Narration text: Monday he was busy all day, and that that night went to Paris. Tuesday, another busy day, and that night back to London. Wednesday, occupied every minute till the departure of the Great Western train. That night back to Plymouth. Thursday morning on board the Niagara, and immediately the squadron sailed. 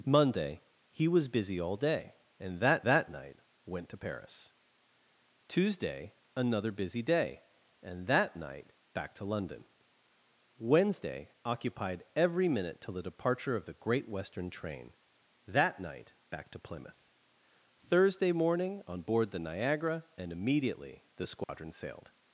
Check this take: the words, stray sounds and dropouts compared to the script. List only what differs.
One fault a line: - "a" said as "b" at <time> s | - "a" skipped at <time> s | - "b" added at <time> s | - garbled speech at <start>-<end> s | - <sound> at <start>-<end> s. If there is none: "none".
- dropout at 21.4-21.5 s